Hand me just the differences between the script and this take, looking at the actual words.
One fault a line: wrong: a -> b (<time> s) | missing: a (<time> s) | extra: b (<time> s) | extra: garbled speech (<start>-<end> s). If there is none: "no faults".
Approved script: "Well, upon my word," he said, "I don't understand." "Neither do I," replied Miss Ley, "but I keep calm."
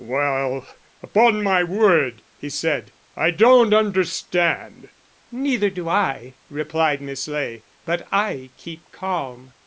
no faults